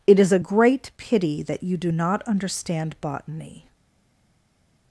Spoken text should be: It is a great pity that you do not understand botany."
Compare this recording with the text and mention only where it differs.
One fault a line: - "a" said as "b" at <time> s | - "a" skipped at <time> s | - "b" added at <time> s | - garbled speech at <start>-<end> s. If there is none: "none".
none